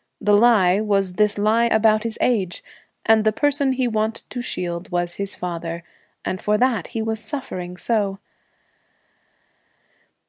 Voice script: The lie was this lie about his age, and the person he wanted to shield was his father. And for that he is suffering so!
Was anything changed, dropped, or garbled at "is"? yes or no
yes